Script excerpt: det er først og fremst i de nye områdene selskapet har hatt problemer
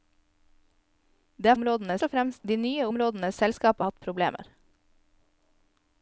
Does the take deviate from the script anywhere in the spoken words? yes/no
yes